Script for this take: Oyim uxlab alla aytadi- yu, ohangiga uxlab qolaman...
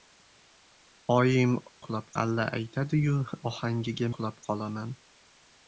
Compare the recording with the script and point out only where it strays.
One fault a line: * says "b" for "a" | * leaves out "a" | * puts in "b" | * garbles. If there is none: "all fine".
all fine